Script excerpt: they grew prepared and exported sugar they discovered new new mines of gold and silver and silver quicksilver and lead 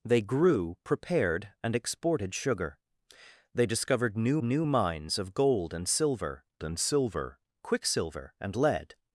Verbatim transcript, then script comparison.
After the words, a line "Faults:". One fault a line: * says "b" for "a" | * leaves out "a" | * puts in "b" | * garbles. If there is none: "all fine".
they grew prepared and exported sugar they discovered new new mines of gold and silver and silver quicksilver and lead
Faults:
all fine